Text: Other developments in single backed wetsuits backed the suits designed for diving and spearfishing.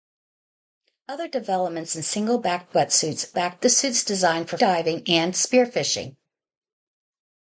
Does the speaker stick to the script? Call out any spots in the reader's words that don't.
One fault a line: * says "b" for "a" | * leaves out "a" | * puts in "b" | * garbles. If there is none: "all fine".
all fine